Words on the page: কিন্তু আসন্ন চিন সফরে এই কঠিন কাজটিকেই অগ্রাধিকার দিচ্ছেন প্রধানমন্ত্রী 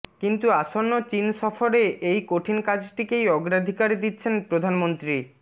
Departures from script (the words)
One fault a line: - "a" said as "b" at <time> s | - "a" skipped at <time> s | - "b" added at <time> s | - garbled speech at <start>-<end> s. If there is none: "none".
none